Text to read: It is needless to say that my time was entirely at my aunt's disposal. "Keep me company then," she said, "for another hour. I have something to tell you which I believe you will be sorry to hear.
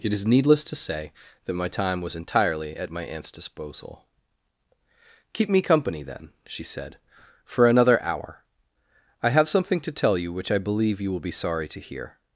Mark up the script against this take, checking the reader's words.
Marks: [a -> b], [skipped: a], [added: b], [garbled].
It is needless to say that my time was entirely at my aunt's disposal. "Keep me company then," she said, "for another hour. I have something to tell you which I believe you will be sorry to hear.